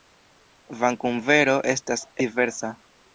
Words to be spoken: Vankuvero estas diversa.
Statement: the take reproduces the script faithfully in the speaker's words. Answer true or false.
true